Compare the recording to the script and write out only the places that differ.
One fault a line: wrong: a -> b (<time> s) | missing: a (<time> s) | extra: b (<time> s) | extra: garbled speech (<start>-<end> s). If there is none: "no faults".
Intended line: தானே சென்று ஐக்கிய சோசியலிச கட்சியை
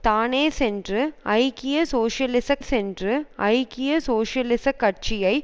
extra: சென்று ஐக்கிய சோசியலிச (2.6 s)